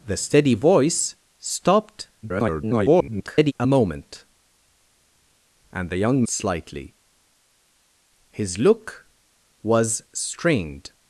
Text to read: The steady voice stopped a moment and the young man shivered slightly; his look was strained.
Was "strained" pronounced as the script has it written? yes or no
yes